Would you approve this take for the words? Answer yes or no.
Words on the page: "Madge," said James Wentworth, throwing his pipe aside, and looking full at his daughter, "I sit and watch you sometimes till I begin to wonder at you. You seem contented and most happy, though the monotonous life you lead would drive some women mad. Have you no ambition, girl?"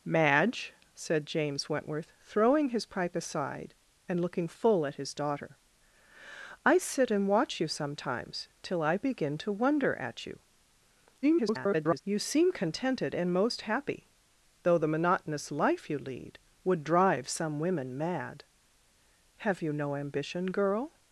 no